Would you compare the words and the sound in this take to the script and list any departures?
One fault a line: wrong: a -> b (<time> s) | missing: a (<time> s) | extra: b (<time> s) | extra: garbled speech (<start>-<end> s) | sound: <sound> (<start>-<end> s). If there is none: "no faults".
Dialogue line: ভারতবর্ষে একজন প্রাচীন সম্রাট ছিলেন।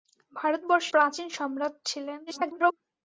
missing: একজন (0.9 s)
extra: garbled speech (2.3-2.7 s)